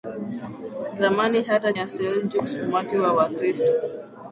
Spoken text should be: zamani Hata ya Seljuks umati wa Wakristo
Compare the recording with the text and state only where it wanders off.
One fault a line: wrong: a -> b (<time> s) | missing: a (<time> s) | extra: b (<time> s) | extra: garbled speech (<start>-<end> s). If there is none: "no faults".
no faults